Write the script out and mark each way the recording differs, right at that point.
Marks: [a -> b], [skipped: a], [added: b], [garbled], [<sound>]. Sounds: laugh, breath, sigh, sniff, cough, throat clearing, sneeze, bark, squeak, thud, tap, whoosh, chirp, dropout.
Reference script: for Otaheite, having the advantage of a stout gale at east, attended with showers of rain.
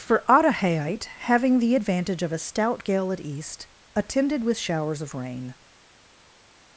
for Otaheite, having the advantage of a stout gale at east, attended with showers of rain.